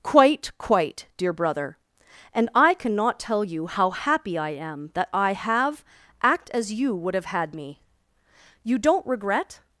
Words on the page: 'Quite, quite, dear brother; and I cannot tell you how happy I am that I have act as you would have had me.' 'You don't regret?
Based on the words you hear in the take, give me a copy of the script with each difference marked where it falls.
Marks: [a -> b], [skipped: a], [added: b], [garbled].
'Quite, quite, dear brother; and I cannot tell you how happy I am that I have act as you would have had me.' 'You don't regret?